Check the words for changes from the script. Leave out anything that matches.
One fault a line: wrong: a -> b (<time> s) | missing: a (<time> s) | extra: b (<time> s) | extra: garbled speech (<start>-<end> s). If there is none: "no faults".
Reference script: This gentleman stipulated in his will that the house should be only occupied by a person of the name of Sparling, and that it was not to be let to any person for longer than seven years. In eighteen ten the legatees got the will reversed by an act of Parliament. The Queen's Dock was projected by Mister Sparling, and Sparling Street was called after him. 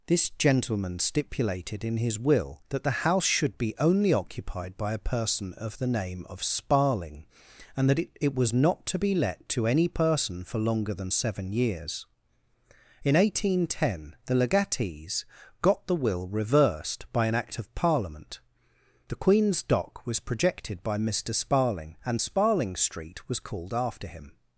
extra: it (8.2 s)